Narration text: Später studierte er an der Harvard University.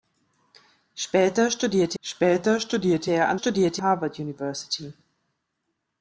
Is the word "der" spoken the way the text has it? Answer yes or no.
no